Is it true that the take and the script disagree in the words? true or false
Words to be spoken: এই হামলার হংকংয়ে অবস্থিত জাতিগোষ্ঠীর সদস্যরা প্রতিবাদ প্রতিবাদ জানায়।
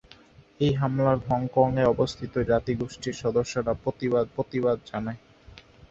false